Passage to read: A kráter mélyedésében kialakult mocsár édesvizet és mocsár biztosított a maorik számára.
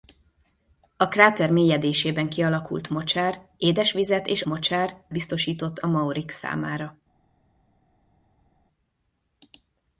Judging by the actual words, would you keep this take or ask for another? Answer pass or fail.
pass